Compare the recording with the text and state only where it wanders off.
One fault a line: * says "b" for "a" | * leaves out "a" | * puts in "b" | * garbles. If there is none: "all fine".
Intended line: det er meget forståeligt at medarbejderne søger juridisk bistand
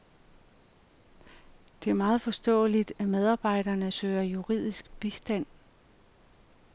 all fine